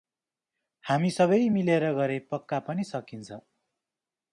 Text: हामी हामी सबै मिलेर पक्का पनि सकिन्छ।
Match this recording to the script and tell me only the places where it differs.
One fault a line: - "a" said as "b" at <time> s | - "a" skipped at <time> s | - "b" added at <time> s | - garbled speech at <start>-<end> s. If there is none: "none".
- "हामी" skipped at 1.1 s
- "गरे" added at 2.0 s